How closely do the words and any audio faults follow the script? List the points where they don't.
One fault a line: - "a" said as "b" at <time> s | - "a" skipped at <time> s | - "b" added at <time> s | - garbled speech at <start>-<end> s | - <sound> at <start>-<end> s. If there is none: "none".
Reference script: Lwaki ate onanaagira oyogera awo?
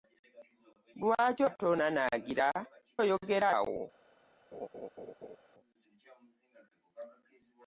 - laugh at 4.5-5.4 s